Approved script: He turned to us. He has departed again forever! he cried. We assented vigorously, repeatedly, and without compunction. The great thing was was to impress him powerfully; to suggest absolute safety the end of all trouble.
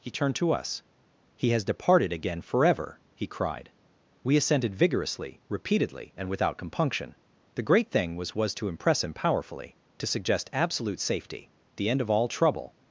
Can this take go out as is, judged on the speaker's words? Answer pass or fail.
pass